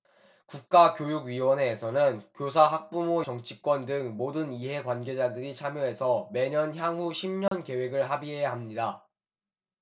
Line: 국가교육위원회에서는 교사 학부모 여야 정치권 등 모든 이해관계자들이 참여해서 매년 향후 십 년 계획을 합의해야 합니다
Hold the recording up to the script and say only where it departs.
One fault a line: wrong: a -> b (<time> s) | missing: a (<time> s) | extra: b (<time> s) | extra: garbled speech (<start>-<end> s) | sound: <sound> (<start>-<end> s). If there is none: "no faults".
missing: 여야 (3.3 s)
sound: dropout (7.5-7.5 s)